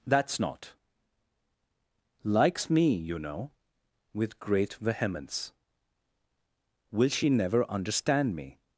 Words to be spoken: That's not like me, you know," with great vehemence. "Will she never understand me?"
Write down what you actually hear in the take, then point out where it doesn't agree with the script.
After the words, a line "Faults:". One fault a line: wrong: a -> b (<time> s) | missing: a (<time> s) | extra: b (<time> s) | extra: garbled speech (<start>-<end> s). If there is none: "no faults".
That's not likes me, you know," with great vehemence. "Will she never understand me?"
Faults:
wrong: like -> likes (2.2 s)